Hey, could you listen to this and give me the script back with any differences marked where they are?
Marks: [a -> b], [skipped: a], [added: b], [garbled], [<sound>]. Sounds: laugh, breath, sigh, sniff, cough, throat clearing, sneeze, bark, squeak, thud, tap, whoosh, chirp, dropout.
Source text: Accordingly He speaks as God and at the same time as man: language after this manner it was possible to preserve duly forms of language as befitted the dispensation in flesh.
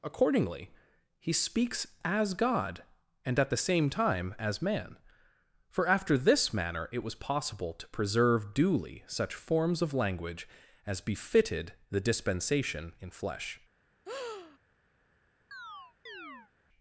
Accordingly He speaks as God and at the same time as man: [language -> for] after this manner it was possible to preserve duly [added: such] forms of language as befitted the dispensation in flesh. [breath] [chirp]